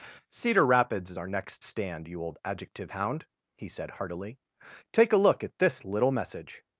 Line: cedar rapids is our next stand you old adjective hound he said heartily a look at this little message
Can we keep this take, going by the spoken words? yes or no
no